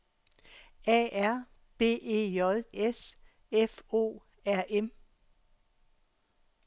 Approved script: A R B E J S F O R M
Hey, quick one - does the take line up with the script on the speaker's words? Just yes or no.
yes